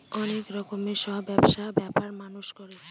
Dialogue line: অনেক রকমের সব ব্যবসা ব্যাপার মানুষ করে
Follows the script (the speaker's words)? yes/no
yes